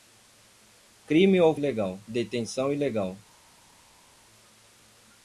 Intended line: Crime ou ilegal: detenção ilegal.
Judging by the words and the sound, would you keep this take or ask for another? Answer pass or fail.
pass